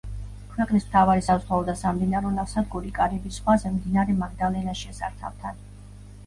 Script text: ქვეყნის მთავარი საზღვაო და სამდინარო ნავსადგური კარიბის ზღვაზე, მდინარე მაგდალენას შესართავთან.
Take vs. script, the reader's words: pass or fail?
pass